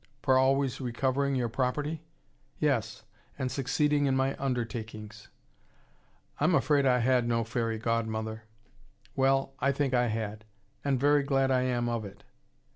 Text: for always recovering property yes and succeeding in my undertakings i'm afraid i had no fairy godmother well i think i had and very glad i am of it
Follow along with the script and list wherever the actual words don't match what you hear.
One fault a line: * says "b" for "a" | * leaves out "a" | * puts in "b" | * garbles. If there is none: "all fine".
* puts in "your"